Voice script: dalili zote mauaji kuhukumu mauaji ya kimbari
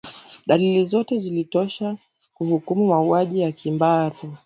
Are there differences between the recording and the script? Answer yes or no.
yes